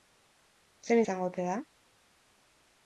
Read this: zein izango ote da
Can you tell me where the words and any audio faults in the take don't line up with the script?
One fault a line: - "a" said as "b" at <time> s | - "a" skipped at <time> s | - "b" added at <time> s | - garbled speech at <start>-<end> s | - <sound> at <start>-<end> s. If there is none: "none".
none